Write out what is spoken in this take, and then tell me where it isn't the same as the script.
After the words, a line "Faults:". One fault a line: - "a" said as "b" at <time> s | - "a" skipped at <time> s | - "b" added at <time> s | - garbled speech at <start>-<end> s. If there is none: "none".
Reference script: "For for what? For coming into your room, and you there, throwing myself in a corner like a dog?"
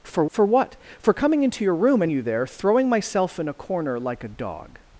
"For for what? For coming into your room, and you there, throwing myself in a corner like a dog?"
Faults:
none